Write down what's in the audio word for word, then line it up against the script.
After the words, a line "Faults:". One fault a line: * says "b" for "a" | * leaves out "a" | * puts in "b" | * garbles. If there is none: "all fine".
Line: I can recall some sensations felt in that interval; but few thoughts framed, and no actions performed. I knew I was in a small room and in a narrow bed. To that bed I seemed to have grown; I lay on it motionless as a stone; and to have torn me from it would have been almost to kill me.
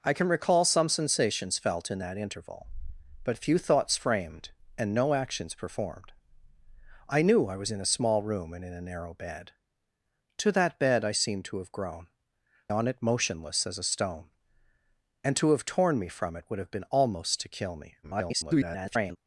I can recall some sensations felt in that interval; but few thoughts framed, and no actions performed. I knew I was in a small room and in a narrow bed. To that bed I seemed to have grown; on it motionless as a stone; and to have torn me from it would have been almost to kill me. [garbled]
Faults:
* leaves out "I lay"
* garbles